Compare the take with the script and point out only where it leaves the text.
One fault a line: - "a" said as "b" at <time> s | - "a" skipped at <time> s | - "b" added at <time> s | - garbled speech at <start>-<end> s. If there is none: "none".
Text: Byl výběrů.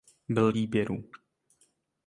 none